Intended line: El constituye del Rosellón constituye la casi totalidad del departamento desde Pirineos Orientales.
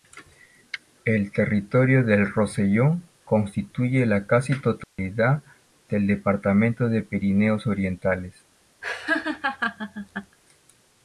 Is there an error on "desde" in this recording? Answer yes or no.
yes